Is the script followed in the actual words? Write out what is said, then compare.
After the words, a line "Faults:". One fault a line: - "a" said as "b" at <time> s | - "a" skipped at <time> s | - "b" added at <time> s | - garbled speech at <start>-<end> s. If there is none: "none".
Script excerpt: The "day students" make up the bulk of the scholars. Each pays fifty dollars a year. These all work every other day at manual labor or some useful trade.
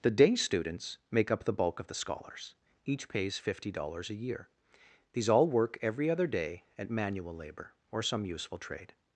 The "day students" make up the bulk of the scholars. Each pays fifty dollars a year. These all work every other day at manual labor or some useful trade.
Faults:
none